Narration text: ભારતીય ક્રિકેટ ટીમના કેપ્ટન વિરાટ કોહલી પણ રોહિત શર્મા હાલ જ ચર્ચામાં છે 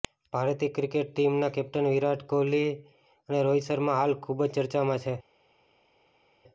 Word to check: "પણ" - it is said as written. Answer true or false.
false